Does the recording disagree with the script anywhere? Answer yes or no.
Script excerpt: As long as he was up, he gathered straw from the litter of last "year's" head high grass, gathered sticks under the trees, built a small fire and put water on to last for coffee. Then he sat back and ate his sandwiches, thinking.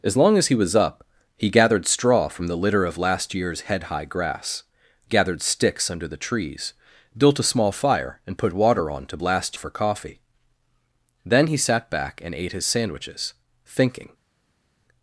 no